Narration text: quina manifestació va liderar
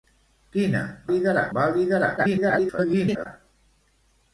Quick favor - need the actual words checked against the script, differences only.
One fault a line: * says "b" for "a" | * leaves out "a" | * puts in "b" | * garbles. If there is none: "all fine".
* says "liderar" for "manifestació"
* garbles